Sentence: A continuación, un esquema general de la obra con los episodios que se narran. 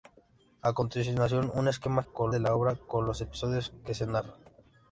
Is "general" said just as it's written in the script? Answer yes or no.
no